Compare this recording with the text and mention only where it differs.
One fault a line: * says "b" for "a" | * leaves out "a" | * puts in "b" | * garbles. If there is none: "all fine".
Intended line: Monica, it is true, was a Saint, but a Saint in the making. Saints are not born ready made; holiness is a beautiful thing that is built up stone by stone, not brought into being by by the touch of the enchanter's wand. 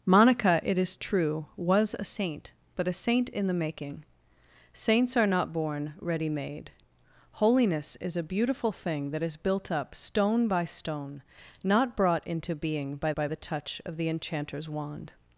all fine